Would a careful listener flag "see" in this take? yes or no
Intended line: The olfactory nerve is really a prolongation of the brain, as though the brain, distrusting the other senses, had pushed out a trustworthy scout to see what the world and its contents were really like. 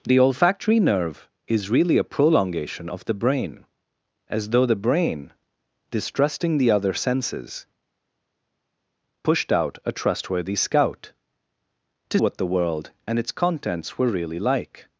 yes